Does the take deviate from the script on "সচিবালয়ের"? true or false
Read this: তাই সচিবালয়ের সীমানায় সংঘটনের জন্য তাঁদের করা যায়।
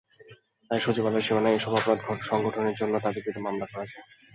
false